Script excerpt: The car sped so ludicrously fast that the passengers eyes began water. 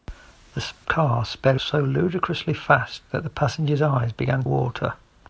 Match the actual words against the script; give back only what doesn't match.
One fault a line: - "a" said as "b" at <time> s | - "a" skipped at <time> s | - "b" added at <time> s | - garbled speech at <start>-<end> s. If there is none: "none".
none